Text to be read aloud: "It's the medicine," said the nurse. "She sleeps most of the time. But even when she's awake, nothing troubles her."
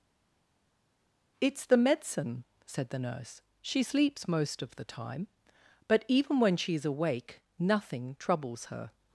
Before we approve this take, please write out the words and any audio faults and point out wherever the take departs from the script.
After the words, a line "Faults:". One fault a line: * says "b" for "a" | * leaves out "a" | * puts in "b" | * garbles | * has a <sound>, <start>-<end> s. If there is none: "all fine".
"It's the medicine," said the nurse. "She sleeps most of the time. But even when she's awake, nothing troubles her."
Faults:
all fine